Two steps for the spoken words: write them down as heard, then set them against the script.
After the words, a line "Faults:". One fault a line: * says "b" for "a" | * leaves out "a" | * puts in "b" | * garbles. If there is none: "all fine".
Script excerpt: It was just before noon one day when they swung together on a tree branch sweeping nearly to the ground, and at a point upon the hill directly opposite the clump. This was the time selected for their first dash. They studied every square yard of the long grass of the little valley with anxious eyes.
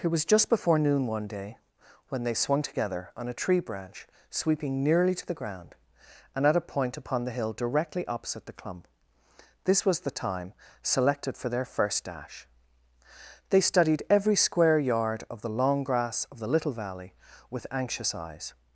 It was just before noon one day when they swung together on a tree branch sweeping nearly to the ground, and at a point upon the hill directly opposite the clump. This was the time selected for their first dash. They studied every square yard of the long grass of the little valley with anxious eyes.
Faults:
all fine